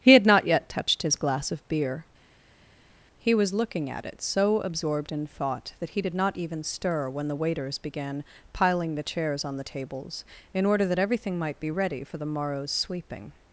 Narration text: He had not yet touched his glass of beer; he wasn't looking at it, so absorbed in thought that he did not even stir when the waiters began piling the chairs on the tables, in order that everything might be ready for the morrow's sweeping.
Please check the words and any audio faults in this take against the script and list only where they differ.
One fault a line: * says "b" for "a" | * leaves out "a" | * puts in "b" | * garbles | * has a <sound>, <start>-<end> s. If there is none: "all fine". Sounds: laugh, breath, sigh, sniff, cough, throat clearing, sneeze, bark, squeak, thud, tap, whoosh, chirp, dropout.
* says "was" for "wasn't"